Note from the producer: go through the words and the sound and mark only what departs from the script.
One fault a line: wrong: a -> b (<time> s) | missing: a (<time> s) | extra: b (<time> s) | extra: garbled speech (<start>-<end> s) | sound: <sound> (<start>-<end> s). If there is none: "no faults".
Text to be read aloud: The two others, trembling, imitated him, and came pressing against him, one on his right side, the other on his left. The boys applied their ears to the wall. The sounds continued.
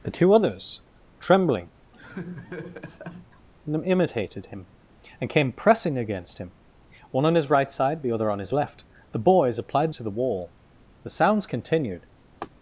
sound: laugh (1.9-3.5 s)
missing: their ears (9.9 s)
sound: laugh (12.4-12.5 s)